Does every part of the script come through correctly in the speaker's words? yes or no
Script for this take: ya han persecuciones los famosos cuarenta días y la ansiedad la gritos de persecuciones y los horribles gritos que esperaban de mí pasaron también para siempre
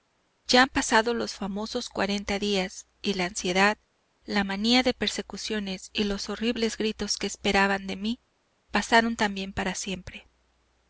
no